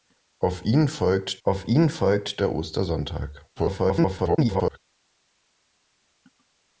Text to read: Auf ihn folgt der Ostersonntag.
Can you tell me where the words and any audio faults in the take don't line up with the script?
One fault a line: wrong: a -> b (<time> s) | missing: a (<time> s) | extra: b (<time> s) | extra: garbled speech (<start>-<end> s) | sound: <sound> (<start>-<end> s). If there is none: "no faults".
extra: auf ihn folgt (1.4 s)
extra: garbled speech (3.6-4.8 s)